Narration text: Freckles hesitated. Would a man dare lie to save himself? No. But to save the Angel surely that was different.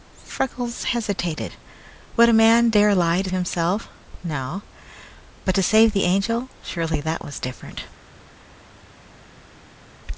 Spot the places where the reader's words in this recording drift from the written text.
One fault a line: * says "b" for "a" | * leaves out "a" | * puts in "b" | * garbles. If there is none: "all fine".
* leaves out "save"